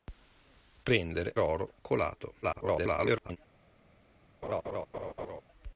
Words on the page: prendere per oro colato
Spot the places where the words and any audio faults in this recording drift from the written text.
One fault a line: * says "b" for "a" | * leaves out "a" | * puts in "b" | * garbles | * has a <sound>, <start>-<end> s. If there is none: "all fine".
* leaves out "per"
* garbles
* has a laugh, 4.4-5.4 s